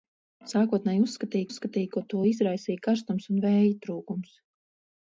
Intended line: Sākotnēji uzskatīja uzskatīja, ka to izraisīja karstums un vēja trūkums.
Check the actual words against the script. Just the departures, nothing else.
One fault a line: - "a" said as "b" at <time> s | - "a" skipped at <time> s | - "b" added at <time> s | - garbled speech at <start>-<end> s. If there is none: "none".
none